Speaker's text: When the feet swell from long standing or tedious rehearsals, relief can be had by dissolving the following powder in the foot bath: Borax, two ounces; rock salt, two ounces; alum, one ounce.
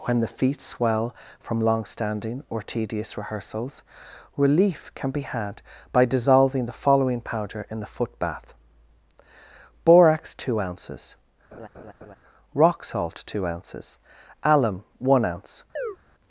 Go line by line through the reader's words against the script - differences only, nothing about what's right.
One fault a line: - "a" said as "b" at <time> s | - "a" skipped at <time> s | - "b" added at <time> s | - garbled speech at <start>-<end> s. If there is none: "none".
none